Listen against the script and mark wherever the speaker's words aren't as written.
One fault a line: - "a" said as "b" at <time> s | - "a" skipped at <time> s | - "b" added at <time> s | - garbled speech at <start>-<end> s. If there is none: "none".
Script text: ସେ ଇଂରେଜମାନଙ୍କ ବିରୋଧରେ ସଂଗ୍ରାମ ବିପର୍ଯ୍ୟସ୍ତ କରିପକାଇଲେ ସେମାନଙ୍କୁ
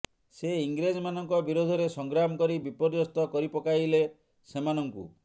- "କରି" added at 2.4 s